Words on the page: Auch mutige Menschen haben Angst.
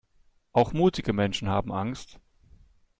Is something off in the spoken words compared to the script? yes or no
no